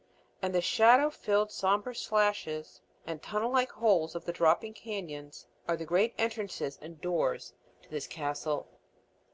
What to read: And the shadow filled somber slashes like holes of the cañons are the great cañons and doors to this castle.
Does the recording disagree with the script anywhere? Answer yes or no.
yes